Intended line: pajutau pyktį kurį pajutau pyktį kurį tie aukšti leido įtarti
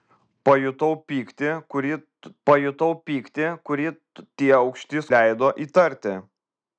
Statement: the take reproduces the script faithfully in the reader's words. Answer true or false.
true